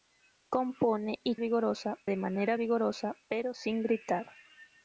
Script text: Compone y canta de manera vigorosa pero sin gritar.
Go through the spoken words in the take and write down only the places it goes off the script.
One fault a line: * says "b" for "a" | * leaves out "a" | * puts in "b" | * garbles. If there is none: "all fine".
* says "vigorosa" for "canta"